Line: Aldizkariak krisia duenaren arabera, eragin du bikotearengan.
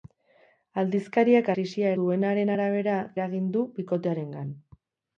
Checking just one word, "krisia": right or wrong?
right